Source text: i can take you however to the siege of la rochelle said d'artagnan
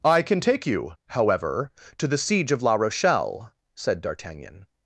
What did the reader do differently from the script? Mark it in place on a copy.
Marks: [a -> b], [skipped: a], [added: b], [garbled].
i can take you however to the siege of la rochelle said d'artagnan